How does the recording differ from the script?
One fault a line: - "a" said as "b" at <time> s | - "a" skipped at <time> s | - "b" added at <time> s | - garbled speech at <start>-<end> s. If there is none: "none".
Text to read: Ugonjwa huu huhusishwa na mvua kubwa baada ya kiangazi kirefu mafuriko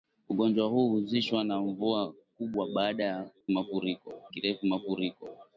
- "kiangazi" said as "mafuriko" at 3.5 s